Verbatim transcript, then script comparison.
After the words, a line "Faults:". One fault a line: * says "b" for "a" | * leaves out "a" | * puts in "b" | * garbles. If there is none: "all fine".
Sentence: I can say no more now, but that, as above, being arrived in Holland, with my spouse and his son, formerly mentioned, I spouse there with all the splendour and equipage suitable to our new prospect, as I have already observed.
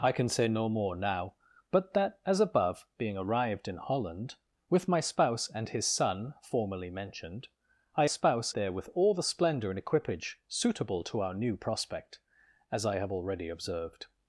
I can say no more now, but that, as above, being arrived in Holland, with my spouse and his son, formerly mentioned, I spouse there with all the splendour and equipage suitable to our new prospect, as I have already observed.
Faults:
all fine